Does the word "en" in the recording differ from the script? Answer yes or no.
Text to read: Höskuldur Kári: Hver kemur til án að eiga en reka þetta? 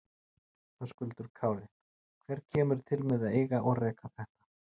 yes